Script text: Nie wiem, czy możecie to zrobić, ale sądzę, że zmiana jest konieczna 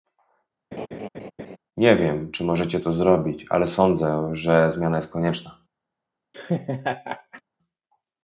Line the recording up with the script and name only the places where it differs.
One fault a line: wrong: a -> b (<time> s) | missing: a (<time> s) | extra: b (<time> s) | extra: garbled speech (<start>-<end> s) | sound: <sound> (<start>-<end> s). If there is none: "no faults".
sound: laugh (0.7-1.6 s)
sound: laugh (6.3-7.4 s)